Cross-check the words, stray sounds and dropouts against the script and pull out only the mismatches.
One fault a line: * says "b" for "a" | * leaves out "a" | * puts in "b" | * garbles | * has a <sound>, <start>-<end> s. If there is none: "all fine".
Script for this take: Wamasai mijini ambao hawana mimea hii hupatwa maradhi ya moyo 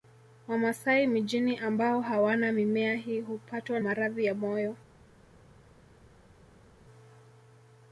all fine